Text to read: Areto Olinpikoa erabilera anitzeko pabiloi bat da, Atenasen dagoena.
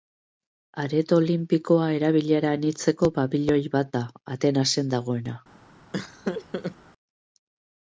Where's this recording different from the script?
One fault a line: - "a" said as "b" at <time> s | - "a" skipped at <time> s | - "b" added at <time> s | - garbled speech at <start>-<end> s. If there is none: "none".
none